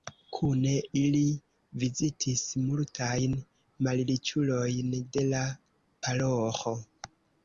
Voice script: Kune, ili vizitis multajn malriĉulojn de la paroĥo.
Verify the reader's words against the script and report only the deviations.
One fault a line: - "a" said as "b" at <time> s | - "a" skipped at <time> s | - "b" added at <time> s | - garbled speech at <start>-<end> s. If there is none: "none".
none